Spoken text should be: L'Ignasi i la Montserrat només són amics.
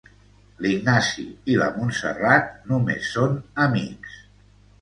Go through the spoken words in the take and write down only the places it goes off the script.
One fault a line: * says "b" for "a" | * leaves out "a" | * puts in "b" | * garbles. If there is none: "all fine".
all fine